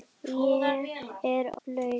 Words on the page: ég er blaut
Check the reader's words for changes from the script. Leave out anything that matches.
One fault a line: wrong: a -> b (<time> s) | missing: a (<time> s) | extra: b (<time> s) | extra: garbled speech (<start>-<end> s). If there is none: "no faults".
no faults